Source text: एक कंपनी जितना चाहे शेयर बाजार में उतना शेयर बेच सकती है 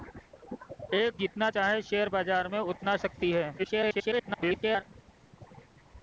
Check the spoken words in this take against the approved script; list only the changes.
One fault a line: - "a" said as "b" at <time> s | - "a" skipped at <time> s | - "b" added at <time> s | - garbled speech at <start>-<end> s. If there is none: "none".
- "कंपनी" skipped at 1.2 s
- "शेयर बेच" skipped at 3.0 s
- garbled speech at 3.6-4.8 s